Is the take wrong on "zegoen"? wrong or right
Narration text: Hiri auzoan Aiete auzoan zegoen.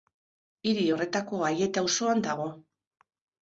wrong